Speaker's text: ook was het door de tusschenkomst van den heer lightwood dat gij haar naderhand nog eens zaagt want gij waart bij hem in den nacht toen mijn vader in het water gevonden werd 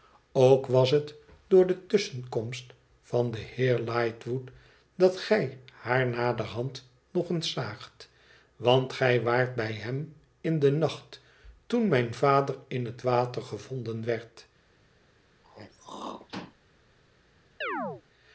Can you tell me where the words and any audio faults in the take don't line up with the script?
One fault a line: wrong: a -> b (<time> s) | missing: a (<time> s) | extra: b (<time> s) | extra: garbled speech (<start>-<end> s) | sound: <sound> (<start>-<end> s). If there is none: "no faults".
sound: throat clearing (15.4-16.6 s)
sound: chirp (17.6-18.0 s)